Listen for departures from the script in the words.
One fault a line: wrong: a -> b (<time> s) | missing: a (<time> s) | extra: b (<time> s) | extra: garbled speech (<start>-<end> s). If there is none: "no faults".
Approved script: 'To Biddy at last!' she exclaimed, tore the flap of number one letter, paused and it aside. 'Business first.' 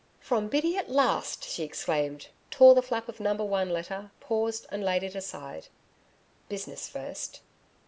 wrong: To -> From (0.2 s)
extra: laid (4.8 s)